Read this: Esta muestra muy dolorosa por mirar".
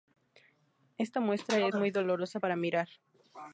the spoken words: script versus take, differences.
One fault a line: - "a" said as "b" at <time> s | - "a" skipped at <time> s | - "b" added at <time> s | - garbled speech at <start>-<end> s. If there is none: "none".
- "es" added at 1.6 s
- "por" said as "para" at 2.4 s